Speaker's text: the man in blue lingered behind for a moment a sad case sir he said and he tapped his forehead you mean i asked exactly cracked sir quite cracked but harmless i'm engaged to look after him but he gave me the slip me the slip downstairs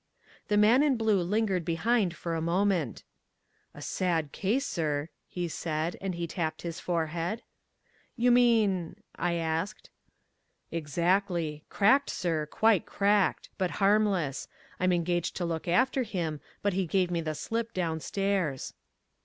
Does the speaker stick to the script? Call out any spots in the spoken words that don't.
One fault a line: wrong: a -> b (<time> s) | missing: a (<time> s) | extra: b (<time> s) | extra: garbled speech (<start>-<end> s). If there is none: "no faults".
missing: me the slip (17.7 s)